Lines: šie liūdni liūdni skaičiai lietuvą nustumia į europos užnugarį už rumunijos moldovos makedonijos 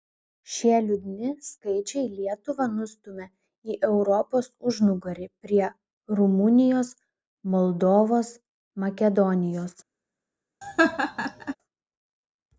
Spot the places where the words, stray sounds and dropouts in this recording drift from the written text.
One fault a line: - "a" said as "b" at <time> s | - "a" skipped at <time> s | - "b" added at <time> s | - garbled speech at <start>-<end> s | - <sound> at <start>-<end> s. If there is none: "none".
- "liūdni" skipped at 1.3 s
- "už" said as "prie" at 5.5 s
- laugh at 10.6-11.6 s